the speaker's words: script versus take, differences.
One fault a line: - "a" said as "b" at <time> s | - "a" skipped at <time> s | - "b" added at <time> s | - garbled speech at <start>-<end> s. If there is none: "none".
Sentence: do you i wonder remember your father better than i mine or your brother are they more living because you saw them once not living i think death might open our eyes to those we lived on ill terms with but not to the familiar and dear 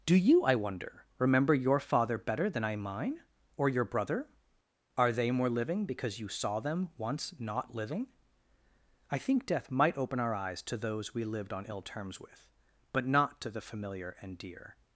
none